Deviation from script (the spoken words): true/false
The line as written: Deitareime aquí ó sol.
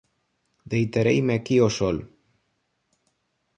false